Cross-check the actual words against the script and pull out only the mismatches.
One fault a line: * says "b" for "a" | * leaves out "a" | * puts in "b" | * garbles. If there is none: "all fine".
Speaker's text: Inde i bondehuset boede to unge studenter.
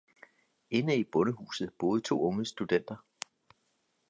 all fine